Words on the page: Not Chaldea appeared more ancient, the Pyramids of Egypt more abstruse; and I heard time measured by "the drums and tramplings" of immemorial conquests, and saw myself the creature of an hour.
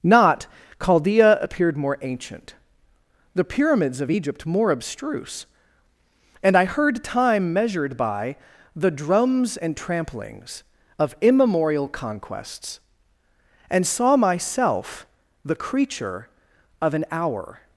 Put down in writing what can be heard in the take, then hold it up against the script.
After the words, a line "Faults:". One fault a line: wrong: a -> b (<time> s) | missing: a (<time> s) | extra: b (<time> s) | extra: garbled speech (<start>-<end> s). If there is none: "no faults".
Not Chaldea appeared more ancient, the Pyramids of Egypt more abstruse; and I heard time measured by "the drums and tramplings" of immemorial conquests, and saw myself the creature of an hour.
Faults:
no faults